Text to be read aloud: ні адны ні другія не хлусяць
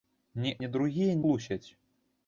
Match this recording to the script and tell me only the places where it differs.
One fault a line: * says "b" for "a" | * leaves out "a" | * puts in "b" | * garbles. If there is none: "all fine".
* leaves out "адны"
* leaves out "не"